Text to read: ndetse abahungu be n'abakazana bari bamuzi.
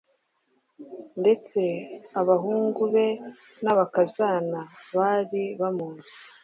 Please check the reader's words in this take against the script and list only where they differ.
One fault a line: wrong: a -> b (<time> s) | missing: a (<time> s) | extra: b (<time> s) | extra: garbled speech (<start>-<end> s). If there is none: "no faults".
no faults